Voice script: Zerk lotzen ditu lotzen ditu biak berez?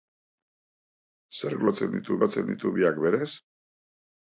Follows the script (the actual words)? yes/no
yes